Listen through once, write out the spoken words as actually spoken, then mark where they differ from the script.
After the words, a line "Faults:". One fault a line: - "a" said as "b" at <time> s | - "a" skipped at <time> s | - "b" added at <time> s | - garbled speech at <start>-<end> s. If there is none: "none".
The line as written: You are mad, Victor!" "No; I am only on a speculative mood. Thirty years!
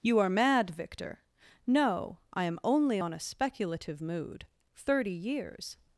You are mad, Victor!" "No; I am only on a speculative mood. Thirty years!
Faults:
none